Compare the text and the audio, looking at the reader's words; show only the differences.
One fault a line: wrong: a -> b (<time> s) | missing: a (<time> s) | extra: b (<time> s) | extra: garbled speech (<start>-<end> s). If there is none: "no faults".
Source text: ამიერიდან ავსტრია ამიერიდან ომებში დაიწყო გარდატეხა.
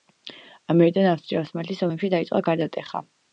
wrong: ამიერიდან -> ოსმალეთის (1.4 s)